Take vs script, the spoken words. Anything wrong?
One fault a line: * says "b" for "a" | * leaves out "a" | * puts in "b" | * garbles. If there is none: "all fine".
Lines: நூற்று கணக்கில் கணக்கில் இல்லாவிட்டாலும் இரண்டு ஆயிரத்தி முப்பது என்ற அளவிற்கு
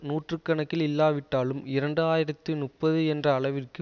* leaves out "கணக்கில்"